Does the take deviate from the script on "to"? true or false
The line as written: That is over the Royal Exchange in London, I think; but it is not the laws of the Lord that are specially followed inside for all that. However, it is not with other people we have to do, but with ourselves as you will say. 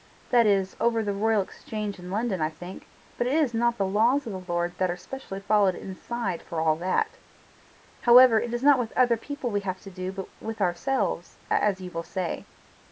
false